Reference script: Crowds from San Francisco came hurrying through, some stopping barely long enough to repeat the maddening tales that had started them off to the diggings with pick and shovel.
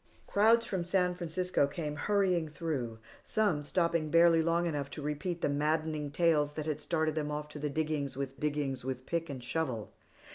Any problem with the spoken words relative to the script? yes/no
yes